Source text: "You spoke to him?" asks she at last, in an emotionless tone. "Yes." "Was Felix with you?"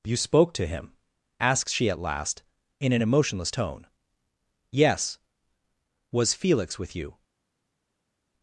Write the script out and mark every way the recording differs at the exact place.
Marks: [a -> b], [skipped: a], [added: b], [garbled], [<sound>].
"You spoke to him?" asks she at last, in an emotionless tone. "Yes." "Was Felix with you?"